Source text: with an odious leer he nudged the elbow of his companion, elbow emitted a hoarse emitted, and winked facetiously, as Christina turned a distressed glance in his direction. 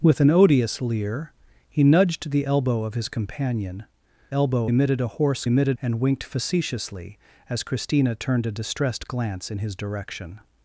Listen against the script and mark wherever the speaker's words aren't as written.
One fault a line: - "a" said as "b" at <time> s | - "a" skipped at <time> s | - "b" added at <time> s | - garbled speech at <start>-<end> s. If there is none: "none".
none